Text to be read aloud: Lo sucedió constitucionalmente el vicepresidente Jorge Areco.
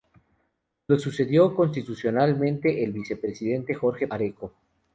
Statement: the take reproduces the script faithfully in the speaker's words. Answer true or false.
true